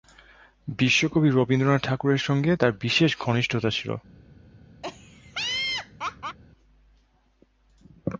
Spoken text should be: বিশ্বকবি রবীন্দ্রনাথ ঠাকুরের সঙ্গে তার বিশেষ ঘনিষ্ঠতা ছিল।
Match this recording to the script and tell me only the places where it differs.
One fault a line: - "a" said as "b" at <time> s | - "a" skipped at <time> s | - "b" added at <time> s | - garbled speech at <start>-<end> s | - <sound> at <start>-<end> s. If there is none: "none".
- laugh at 4.8-6.4 s